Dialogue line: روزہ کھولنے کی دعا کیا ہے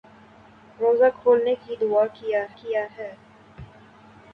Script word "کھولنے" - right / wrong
right